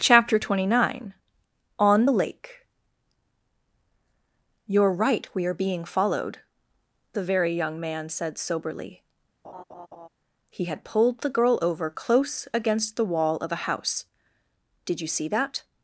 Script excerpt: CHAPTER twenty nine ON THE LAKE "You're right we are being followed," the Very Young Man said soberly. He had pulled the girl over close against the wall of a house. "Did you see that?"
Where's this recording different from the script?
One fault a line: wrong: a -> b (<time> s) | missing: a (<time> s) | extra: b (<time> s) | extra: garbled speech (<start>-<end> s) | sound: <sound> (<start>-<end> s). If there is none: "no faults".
sound: laugh (9.4-10.1 s)